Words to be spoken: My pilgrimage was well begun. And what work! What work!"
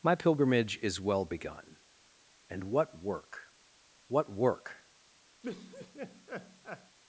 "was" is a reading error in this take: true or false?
true